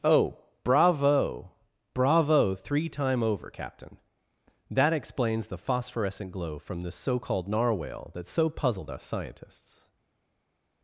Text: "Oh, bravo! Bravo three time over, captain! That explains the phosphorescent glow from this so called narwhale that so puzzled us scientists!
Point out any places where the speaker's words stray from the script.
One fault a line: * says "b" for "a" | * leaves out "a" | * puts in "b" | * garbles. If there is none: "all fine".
all fine